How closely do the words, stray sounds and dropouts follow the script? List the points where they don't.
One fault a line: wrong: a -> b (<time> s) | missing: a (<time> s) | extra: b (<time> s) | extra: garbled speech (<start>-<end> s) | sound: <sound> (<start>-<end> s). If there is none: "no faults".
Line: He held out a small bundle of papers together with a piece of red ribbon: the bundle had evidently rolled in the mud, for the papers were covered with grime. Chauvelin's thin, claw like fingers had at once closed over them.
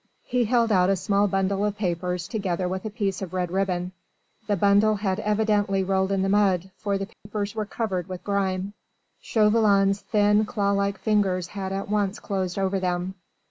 sound: dropout (7.1-7.3 s)